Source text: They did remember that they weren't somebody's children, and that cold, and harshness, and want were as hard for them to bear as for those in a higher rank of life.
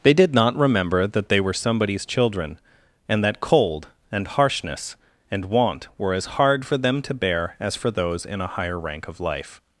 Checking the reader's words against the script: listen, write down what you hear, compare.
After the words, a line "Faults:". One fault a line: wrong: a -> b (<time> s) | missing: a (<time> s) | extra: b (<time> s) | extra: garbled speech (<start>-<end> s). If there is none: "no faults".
They did not remember that they were somebody's children, and that cold, and harshness, and want were as hard for them to bear as for those in a higher rank of life.
Faults:
extra: not (0.3 s)
wrong: weren't -> were (1.4 s)